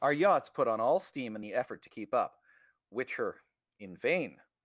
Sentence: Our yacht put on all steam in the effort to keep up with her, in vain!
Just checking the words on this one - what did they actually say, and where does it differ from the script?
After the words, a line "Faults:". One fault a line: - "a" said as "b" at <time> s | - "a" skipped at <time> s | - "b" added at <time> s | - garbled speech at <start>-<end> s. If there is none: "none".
Our yachts put on all steam in the effort to keep up which her, in vain!
Faults:
- "yacht" said as "yachts" at 0.1 s
- "with" said as "which" at 2.9 s